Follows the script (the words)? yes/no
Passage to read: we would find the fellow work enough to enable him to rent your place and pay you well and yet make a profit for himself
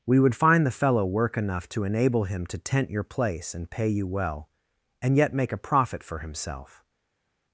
no